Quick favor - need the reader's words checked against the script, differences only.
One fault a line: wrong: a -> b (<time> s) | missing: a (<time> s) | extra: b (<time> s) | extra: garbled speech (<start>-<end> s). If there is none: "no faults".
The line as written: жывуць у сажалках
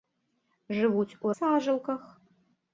no faults